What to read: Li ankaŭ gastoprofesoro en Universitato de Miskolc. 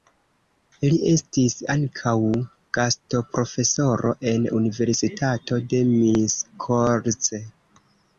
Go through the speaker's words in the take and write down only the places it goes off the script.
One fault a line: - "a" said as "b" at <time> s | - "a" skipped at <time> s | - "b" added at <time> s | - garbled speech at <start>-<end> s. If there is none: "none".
- "estis" added at 1.1 s